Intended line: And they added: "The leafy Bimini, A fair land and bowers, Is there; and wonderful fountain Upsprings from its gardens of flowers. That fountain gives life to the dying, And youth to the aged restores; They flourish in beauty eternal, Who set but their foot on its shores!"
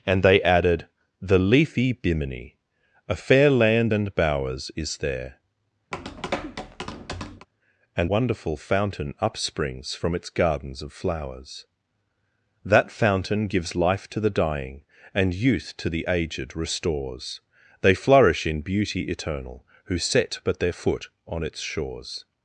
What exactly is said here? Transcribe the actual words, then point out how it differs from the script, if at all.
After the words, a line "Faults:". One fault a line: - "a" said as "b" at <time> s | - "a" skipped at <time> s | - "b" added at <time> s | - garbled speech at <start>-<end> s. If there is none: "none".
And they added: "The leafy Bimini, A fair land and bowers, Is there; and wonderful fountain Upsprings from its gardens of flowers. That fountain gives life to the dying, And youth to the aged restores; They flourish in beauty eternal, Who set but their foot on its shores!"
Faults:
none